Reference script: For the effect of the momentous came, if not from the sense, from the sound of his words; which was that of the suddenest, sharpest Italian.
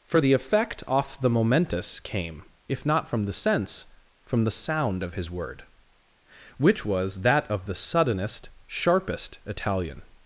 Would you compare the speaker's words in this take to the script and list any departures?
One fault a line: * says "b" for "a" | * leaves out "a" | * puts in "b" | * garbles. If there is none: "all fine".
* says "off" for "of"
* says "word" for "words"